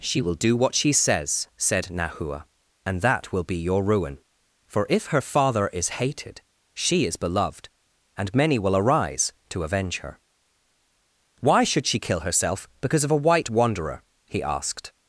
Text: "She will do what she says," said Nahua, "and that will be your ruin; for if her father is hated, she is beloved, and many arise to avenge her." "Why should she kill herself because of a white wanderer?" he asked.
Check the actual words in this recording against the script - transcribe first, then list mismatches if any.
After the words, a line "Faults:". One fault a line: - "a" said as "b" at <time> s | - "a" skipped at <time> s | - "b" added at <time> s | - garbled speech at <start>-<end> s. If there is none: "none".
"She will do what she says," said Nahua, "and that will be your ruin; for if her father is hated, she is beloved, and many will arise to avenge her." "Why should she kill herself because of a white wanderer?" he asked.
Faults:
- "will" added at 8.6 s